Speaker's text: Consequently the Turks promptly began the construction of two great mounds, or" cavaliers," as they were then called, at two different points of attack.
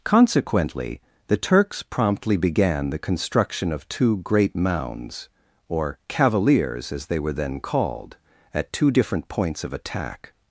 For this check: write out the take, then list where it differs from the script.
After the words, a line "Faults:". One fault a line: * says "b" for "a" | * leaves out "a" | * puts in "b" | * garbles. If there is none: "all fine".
Consequently the Turks promptly began the construction of two great mounds, or" cavaliers," as they were then called, at two different points of attack.
Faults:
all fine